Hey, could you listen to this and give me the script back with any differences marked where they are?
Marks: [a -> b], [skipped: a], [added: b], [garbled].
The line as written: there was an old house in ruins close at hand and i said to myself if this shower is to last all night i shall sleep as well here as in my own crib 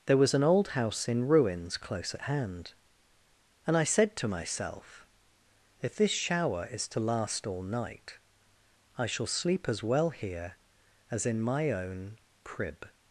there was an old house in ruins close at hand and i said to myself if this shower is to last all night i shall sleep as well here as in my own crib